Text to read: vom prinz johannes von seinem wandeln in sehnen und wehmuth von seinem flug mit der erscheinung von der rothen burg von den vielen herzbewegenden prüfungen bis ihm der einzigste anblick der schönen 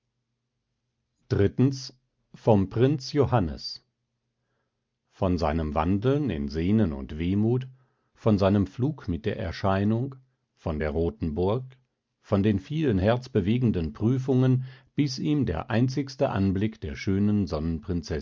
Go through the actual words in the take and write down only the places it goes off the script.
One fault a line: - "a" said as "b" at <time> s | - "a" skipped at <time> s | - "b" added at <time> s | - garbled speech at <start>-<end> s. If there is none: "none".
none